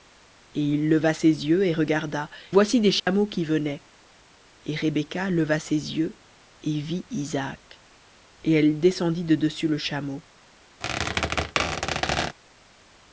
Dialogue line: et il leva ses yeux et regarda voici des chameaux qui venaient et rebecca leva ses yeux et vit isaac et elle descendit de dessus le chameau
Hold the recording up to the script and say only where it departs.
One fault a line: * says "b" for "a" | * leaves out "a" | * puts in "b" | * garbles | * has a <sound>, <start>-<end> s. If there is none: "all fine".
* has a dropout, 3.0-3.1 s
* has a squeak, 10.8-12.4 s